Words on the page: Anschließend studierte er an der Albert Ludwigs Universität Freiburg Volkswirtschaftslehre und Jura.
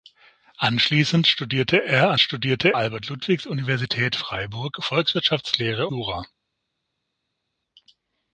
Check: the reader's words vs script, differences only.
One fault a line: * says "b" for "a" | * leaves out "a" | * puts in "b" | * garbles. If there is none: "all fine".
* says "studierte" for "der"
* leaves out "und"